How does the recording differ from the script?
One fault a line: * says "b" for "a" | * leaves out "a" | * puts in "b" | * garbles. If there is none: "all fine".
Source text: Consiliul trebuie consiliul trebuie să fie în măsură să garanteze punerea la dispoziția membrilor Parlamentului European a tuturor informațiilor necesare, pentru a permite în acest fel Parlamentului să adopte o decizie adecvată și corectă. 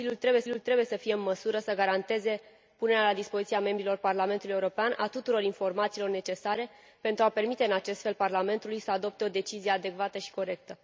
all fine